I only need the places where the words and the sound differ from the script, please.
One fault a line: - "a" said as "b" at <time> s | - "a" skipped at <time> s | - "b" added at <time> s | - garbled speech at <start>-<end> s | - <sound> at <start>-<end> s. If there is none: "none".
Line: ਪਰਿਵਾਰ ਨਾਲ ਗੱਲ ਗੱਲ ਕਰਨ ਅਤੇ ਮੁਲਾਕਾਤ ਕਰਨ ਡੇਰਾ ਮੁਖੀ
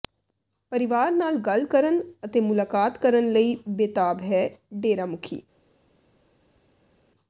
- "ਗੱਲ" skipped at 1.6 s
- "ਲਈ ਬੇਤਾਬ ਹੈ" added at 3.3 s